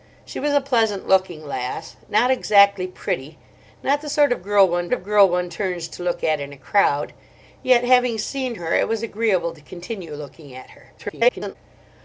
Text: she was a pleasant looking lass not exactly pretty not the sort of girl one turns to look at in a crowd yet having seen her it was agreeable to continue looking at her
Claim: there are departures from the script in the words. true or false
true